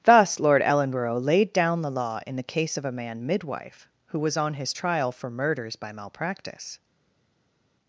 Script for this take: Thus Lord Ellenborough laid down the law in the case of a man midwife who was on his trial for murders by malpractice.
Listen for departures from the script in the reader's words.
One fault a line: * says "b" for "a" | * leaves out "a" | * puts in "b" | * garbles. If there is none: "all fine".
all fine